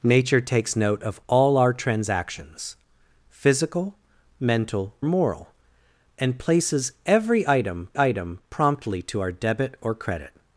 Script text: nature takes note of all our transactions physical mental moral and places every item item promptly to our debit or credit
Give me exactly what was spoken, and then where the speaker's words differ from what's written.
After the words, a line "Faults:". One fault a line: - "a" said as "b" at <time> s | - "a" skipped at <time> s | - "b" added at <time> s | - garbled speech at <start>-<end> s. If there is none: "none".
nature takes note of all our transactions physical mental moral and places every item item promptly to our debit or credit
Faults:
none